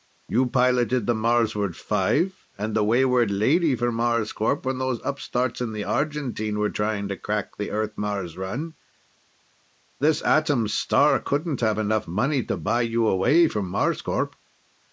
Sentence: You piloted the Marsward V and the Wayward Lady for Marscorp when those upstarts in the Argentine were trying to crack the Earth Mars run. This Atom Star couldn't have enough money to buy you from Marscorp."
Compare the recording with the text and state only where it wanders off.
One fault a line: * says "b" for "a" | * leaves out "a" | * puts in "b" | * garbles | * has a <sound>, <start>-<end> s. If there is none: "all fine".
* puts in "away"